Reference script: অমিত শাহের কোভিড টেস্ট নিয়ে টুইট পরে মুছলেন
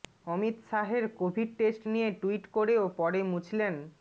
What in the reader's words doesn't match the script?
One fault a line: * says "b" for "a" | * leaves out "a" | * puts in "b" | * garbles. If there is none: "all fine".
* puts in "করেও"